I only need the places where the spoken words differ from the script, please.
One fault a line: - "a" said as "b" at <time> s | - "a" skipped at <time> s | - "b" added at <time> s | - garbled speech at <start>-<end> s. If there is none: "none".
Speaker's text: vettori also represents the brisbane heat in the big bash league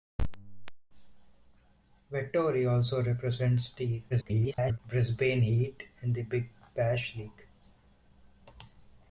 - garbled speech at 4.1-4.8 s